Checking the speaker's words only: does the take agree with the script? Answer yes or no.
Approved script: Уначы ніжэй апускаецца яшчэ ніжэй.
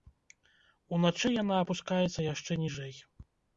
no